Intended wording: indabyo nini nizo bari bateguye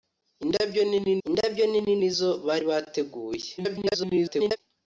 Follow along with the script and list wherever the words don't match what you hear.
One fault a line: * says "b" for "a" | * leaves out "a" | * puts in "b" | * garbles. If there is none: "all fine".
* puts in "indabyo nini"
* garbles